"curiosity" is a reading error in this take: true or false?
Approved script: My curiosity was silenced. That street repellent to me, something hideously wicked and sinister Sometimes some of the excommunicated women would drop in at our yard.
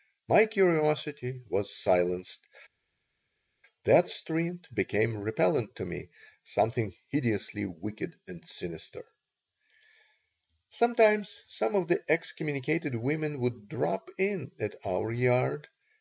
false